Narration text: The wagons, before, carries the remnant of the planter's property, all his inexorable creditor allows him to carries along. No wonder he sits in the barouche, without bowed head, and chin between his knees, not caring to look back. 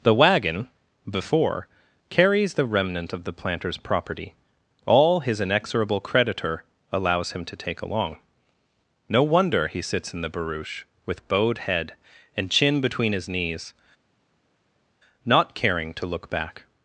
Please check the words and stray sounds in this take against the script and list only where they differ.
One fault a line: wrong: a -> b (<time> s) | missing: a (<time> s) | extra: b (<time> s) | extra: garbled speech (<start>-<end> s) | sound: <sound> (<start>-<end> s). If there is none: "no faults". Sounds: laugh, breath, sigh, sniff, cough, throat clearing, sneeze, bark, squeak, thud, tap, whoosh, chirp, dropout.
wrong: wagons -> wagon (0.1 s)
wrong: carries -> take (7.5 s)
wrong: without -> with (11.0 s)